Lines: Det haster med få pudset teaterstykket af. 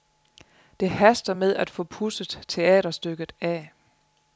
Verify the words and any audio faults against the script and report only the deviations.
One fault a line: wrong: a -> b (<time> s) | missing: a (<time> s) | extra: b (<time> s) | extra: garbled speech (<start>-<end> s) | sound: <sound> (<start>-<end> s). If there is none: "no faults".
extra: at (1.5 s)